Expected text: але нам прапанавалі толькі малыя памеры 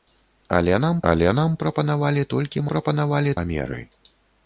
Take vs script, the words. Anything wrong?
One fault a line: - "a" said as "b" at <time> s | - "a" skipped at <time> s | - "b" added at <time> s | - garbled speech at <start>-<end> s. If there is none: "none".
- "але нам" added at 1.1 s
- "малыя" said as "прапанавалі" at 2.7 s